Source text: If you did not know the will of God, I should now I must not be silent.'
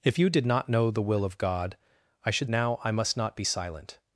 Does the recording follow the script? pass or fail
pass